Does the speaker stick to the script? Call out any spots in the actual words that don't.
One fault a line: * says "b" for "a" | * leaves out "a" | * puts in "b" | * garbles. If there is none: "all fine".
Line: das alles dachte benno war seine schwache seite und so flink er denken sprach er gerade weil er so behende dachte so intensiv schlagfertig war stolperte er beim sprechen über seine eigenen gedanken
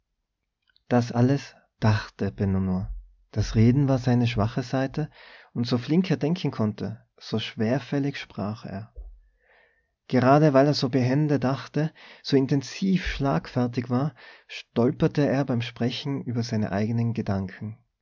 * puts in "nur das reden"
* puts in "konnte so schwerfällig"